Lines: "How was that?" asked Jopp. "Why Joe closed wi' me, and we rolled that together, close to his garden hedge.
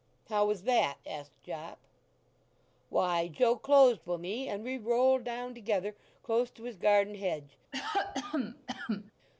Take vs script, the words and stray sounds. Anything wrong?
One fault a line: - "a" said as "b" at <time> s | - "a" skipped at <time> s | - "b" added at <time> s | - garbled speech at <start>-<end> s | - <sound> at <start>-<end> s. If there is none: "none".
- "that" said as "down" at 5.2 s
- cough at 7.7-9.1 s